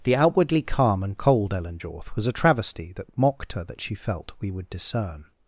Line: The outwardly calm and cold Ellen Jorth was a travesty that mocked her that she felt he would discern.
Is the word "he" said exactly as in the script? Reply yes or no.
no